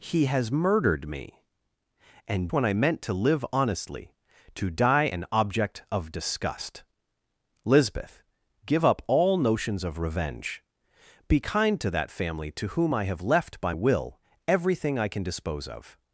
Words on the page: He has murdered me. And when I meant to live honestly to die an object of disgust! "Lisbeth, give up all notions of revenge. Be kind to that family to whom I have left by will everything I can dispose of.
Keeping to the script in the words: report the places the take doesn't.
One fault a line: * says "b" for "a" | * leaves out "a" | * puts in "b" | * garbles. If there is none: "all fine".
all fine